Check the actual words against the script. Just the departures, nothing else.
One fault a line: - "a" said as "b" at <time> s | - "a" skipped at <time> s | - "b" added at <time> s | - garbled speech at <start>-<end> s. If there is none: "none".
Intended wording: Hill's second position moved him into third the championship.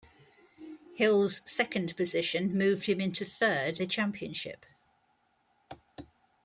none